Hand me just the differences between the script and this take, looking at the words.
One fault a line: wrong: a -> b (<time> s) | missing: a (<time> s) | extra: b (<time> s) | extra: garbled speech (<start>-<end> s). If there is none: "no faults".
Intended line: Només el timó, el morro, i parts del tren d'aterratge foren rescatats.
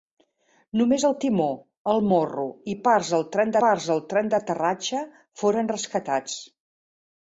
extra: parts del tren (3.6 s)